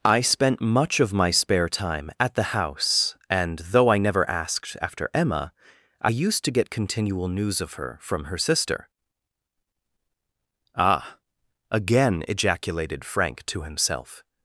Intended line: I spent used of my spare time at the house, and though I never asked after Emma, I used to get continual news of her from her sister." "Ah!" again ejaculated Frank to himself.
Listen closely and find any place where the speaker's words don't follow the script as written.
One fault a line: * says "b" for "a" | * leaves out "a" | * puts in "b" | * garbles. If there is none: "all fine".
* says "much" for "used"